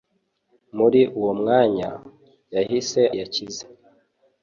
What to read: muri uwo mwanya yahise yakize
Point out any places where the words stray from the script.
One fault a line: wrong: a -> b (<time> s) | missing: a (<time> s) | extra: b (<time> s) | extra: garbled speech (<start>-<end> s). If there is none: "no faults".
no faults